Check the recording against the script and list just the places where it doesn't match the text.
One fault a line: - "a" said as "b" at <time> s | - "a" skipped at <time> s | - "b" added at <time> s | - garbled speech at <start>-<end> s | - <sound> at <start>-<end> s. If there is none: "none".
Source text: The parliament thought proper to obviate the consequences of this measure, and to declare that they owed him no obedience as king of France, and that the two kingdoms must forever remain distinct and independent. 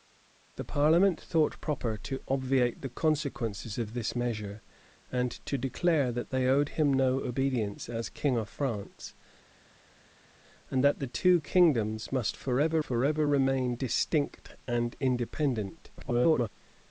- "forever" added at 12.8 s
- garbled speech at 16.0-16.5 s